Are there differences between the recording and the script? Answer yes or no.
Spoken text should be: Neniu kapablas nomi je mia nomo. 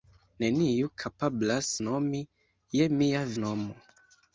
no